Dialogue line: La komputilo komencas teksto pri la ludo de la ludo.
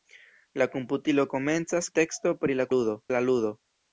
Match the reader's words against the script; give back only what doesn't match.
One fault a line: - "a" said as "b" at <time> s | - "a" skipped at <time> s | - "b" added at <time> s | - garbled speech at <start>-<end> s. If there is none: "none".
none